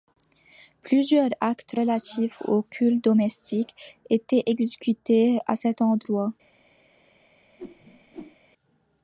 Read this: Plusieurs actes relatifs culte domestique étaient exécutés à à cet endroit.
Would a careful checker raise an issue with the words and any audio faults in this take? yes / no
yes